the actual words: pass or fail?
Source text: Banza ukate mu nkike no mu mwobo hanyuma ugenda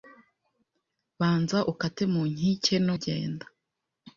fail